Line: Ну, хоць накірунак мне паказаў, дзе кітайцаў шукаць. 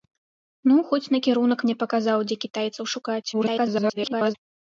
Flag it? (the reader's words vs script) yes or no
yes